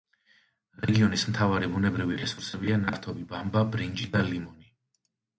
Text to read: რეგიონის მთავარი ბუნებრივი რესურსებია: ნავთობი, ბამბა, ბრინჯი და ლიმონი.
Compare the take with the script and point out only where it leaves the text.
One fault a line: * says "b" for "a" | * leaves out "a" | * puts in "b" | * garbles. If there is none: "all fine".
all fine